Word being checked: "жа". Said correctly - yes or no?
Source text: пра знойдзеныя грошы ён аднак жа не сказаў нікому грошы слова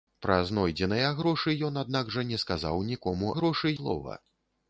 yes